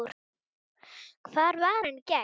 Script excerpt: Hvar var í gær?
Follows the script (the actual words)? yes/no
no